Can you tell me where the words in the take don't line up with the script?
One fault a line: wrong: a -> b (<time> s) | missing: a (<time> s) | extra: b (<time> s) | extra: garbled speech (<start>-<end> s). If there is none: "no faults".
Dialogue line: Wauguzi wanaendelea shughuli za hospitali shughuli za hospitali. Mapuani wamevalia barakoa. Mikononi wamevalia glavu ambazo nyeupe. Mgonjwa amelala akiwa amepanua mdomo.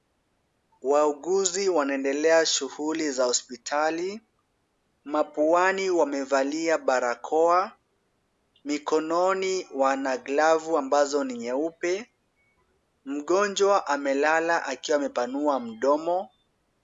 missing: shughuli za hospitali (4.2 s)
wrong: wamevalia -> wana (9.8 s)
extra: ni (11.2 s)